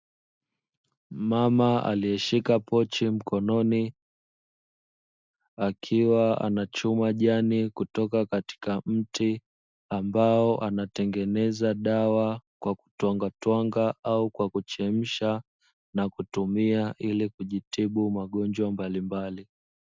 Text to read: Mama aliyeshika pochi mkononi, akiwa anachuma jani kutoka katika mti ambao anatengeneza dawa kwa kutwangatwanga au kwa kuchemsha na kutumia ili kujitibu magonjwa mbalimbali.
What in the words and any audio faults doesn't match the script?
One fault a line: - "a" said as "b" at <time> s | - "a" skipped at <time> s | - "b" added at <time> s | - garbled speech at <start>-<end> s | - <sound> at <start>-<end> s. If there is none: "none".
none